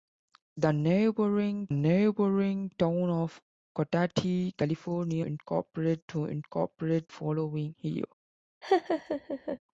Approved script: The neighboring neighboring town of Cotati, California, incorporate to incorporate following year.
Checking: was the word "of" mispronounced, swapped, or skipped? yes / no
no